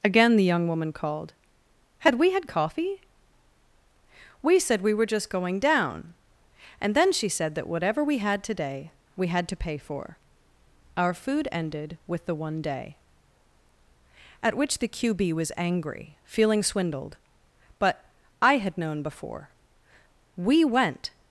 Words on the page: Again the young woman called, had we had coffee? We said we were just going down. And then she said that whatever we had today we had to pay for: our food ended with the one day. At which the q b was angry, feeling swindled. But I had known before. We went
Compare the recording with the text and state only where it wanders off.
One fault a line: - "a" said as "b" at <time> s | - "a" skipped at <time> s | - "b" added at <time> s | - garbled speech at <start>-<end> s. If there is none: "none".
none